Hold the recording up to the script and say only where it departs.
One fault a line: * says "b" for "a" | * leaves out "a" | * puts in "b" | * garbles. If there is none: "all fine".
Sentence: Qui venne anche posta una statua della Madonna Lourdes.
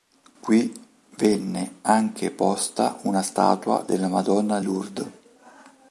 all fine